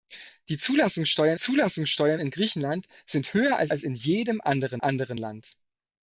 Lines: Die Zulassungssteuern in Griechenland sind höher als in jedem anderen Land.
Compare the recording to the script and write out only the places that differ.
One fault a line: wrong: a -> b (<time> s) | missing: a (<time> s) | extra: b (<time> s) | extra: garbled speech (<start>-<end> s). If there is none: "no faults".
extra: Zulassungssteuern (1.4 s)
extra: als (3.7 s)
extra: anderen (4.8 s)